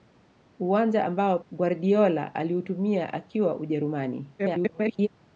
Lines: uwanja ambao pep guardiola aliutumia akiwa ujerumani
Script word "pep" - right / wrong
wrong